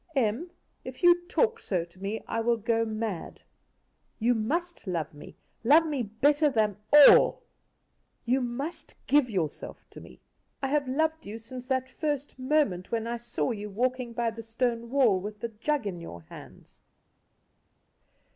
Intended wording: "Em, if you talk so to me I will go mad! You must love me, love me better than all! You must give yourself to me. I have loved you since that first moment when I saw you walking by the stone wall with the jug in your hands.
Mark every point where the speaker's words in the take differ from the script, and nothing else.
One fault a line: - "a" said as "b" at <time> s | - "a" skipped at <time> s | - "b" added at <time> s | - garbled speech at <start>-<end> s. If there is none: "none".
none